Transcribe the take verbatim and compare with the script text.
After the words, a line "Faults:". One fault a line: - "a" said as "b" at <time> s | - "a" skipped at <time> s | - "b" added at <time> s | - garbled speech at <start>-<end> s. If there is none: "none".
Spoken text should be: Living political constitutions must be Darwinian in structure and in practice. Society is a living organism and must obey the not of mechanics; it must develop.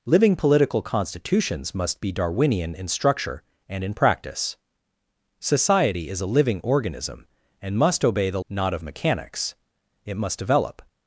Living political constitutions must be Darwinian in structure and in practice. Society is a living organism and must obey the not of mechanics; it must develop.
Faults:
none